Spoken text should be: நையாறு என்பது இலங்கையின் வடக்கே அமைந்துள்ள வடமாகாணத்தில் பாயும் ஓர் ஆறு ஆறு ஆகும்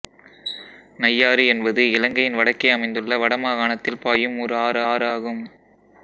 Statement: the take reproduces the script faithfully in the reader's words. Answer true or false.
true